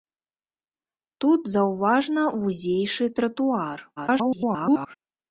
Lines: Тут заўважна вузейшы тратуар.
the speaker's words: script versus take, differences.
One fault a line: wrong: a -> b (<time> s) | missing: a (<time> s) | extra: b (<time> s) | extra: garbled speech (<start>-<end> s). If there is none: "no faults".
extra: garbled speech (4.0-5.0 s)